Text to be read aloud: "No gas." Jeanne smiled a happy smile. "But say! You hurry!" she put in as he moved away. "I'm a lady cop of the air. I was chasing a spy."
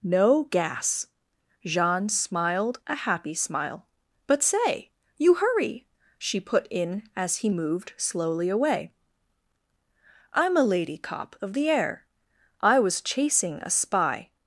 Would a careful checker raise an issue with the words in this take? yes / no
yes